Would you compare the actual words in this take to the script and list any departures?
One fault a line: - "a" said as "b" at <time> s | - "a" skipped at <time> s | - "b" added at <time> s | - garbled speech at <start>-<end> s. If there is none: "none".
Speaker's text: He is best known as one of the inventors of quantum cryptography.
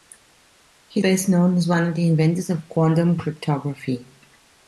- "is" skipped at 1.0 s